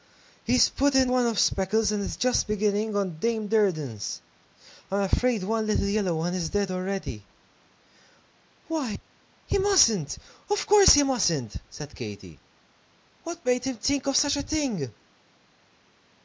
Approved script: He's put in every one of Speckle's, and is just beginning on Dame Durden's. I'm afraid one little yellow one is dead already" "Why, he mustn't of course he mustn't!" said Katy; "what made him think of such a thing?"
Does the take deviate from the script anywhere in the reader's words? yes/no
yes